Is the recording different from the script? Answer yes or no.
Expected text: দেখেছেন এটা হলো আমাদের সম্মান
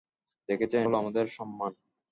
yes